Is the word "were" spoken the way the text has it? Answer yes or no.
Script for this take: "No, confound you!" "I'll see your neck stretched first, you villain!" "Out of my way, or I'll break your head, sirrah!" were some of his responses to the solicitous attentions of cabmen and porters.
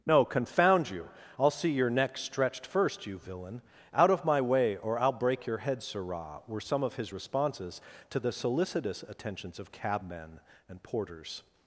yes